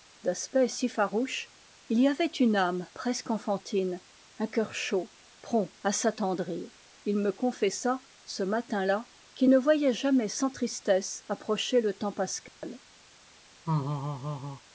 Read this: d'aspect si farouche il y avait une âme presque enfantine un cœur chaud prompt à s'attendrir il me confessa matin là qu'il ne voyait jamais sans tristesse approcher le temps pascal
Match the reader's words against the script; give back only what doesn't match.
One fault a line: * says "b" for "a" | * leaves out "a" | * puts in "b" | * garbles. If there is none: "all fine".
* puts in "ce"